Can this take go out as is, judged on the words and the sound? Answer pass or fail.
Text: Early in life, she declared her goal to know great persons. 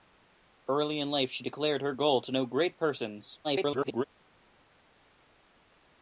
fail